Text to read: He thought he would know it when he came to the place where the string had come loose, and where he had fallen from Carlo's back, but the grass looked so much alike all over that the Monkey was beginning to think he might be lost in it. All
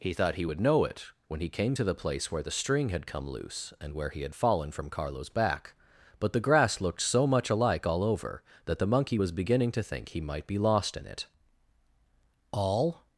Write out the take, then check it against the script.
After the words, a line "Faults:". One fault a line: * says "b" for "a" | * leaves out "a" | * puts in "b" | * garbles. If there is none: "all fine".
He thought he would know it when he came to the place where the string had come loose, and where he had fallen from Carlo's back, but the grass looked so much alike all over that the Monkey was beginning to think he might be lost in it. All
Faults:
all fine